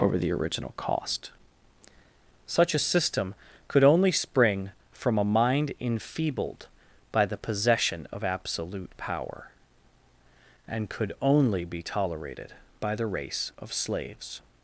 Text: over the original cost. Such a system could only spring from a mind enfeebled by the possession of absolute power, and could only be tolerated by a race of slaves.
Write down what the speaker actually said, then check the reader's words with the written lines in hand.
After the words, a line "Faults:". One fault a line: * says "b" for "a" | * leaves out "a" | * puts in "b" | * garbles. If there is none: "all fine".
over the original cost. Such a system could only spring from a mind enfeebled by the possession of absolute power, and could only be tolerated by the race of slaves.
Faults:
* says "the" for "a"